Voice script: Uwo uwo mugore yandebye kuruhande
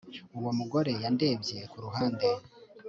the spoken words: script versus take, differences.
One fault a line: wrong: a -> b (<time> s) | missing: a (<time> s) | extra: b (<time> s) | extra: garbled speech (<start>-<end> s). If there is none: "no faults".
missing: uwo (0.5 s)